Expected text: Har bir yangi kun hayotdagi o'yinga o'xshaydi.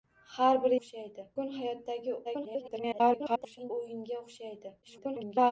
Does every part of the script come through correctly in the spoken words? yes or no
no